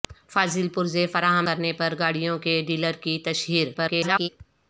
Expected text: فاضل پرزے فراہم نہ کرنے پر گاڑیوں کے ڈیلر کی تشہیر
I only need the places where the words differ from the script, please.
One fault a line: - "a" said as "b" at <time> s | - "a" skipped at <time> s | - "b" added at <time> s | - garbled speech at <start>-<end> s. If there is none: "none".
- "نہ" skipped at 1.5 s
- garbled speech at 3.7-4.3 s